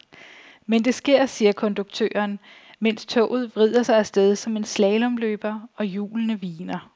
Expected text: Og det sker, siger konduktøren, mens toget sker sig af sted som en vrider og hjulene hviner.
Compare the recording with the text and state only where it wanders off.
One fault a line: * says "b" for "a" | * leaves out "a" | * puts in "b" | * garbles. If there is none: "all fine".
* says "Men" for "Og"
* says "vrider" for "sker"
* says "slalomløber" for "vrider"